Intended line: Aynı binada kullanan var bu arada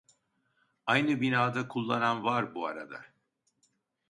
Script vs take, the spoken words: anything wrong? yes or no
no